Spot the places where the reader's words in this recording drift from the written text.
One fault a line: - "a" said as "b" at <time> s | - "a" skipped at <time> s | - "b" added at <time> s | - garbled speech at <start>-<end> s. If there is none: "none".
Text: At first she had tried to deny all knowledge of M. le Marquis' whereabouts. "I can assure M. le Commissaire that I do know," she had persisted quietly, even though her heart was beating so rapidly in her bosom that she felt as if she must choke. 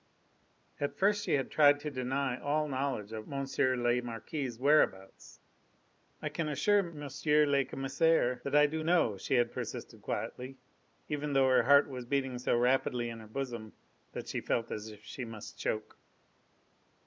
none